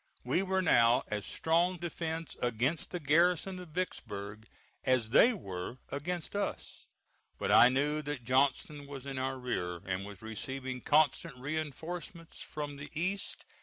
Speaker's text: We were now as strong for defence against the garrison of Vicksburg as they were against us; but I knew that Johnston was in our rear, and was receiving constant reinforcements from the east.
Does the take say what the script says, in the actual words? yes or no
no